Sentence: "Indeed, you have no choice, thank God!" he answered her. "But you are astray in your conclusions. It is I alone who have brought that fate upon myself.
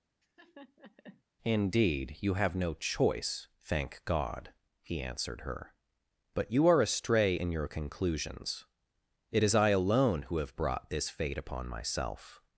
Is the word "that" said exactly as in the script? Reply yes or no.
no